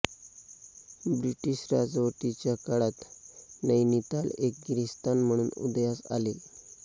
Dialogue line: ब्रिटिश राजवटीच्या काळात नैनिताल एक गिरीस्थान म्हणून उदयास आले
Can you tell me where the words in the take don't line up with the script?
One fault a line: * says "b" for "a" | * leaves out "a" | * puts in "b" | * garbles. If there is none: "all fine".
all fine